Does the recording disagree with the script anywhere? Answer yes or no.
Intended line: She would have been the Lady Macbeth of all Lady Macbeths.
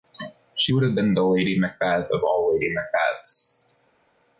no